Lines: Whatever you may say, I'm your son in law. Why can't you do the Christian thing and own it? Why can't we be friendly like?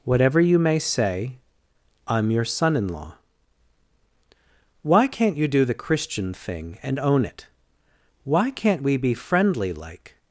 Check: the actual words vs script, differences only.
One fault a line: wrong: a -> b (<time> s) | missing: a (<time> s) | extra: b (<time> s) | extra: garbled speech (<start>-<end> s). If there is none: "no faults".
no faults